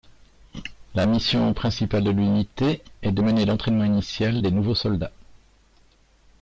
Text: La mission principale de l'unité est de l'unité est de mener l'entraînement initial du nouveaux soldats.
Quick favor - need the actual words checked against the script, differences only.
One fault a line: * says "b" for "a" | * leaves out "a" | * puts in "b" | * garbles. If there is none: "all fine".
* leaves out "l'unité est de"
* says "des" for "du"